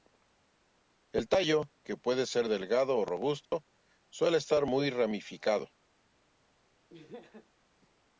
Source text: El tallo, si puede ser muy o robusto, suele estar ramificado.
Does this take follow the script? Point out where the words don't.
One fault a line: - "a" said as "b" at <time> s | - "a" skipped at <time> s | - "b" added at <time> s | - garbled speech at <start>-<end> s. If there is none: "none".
- "si" said as "que" at 1.8 s
- "muy" said as "delgado" at 2.5 s
- "muy" added at 4.6 s